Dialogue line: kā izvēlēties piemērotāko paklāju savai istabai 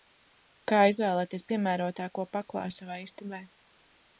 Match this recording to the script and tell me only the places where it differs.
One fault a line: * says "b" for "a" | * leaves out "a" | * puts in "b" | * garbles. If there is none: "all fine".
all fine